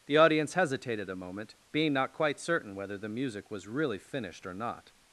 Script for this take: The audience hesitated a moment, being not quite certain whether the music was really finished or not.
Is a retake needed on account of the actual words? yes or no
no